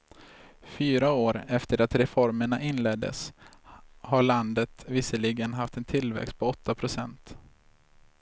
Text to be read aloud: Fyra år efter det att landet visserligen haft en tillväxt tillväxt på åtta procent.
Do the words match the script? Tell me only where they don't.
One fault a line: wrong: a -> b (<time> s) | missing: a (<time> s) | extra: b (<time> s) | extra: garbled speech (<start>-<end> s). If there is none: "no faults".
extra: reformerna inleddes har (1.9 s)
missing: tillväxt (6.4 s)